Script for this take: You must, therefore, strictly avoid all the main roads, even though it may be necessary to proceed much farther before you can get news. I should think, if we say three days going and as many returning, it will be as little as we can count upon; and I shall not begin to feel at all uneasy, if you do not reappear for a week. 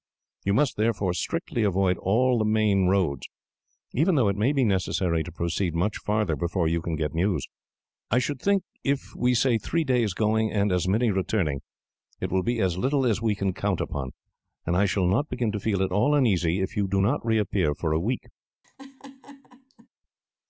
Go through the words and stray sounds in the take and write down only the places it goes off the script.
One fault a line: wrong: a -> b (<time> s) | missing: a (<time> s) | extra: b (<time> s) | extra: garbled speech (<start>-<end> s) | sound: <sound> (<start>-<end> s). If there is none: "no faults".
sound: laugh (18.6-19.9 s)